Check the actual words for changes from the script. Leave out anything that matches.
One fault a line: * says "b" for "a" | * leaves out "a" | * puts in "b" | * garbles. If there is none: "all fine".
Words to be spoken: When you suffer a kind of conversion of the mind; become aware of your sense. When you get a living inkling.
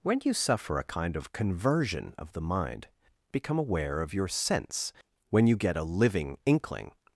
all fine